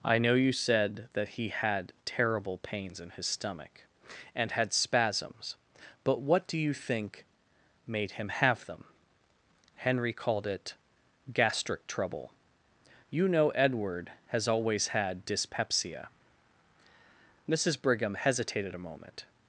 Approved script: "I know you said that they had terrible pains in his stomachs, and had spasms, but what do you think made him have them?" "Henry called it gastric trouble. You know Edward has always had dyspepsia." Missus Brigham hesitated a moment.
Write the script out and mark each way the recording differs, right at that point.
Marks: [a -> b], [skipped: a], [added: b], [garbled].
"I know you said that [they -> he] had terrible pains in his [stomachs, -> stomach] and had spasms, but what do you think made him have them?" "Henry called it gastric trouble. You know Edward has always had dyspepsia." Missus Brigham hesitated a moment.